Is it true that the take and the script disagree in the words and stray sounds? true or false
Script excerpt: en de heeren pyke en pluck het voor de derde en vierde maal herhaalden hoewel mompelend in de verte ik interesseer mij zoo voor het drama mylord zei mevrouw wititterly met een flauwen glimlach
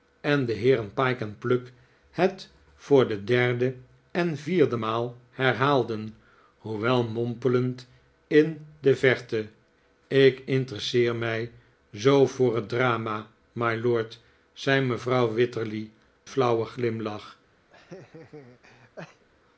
true